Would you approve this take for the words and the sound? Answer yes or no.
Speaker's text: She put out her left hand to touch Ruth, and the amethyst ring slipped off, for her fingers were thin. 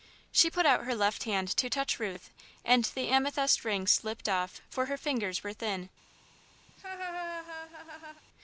no